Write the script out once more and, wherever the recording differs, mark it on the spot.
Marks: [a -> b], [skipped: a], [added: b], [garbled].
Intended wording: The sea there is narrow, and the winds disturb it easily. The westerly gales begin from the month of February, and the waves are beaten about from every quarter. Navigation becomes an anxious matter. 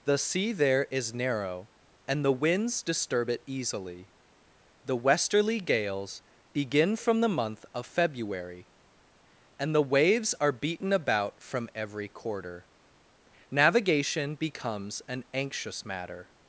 The sea there is narrow, and the winds disturb it easily. The westerly gales begin from the month of February, and the waves are beaten about from every quarter. Navigation becomes an anxious matter.